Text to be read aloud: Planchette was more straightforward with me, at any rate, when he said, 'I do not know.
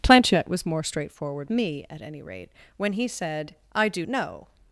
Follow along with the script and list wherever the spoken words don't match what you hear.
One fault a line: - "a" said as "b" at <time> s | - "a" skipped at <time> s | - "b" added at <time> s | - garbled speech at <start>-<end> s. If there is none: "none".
- "with" skipped at 1.5 s
- "not" skipped at 4.1 s